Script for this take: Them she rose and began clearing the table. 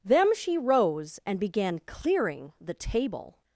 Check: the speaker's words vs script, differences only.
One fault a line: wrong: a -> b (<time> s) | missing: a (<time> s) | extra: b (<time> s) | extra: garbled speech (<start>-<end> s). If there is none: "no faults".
no faults